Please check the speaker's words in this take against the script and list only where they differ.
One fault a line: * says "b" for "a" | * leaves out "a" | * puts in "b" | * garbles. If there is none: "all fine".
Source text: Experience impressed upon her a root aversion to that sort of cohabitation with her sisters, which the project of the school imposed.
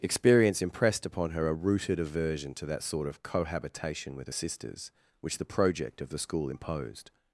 * says "rooted" for "root"